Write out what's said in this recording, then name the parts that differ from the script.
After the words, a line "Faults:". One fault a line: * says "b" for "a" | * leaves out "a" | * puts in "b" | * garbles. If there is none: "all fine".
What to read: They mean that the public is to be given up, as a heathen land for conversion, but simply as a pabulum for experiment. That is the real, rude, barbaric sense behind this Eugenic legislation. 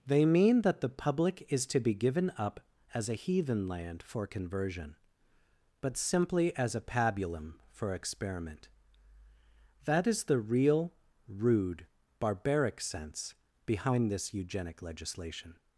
They mean that the public is to be given up, as a heathen land for conversion, but simply as a pabulum for experiment. That is the real, rude, barbaric sense behind this Eugenic legislation.
Faults:
all fine